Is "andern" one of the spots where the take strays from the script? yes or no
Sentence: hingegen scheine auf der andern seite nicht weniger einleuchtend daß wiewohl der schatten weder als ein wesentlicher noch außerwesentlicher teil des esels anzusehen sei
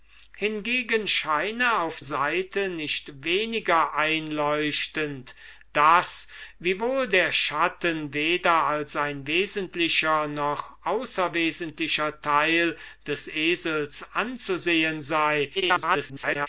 yes